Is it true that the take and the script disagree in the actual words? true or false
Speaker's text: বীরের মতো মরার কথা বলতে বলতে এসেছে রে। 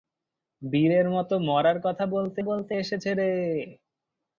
false